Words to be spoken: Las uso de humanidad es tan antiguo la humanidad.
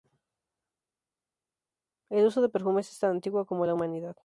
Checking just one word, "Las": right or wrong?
wrong